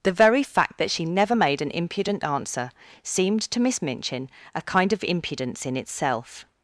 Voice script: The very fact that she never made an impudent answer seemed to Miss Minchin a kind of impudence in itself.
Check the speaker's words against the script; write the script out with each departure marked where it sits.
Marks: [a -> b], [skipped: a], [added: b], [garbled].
The very fact that she never made an impudent answer seemed to Miss Minchin a kind of impudence in itself.